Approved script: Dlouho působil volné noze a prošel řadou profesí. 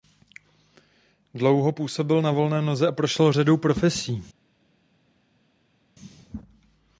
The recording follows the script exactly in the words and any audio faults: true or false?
false